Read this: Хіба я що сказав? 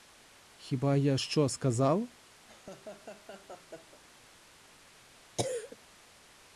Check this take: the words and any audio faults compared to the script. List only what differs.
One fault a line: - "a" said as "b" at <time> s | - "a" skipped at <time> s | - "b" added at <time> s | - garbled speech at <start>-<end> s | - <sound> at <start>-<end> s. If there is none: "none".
- laugh at 2.5-4.0 s
- cough at 5.4-5.8 s